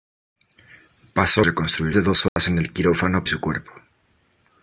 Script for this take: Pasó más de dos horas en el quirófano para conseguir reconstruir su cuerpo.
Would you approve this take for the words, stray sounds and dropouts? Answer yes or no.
no